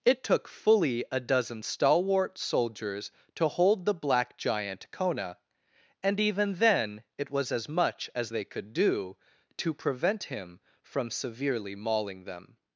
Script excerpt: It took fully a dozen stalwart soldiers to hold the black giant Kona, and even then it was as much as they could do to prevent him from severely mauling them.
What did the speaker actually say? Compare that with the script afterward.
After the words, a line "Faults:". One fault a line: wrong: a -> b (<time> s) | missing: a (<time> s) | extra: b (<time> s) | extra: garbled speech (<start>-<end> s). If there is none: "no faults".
It took fully a dozen stalwart soldiers to hold the black giant Kona, and even then it was as much as they could do to prevent him from severely mauling them.
Faults:
no faults